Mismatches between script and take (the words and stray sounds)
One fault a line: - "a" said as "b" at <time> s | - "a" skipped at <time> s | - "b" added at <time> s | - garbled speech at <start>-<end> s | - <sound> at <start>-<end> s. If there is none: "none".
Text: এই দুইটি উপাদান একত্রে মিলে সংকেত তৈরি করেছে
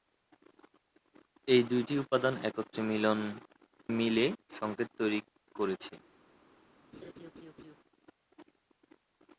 - "একত্রে" skipped at 2.3 s
- laugh at 6.9-7.8 s